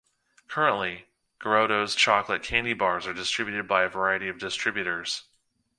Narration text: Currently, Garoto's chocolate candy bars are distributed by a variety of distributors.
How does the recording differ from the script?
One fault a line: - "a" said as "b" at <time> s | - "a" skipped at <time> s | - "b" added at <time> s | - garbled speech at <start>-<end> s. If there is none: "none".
none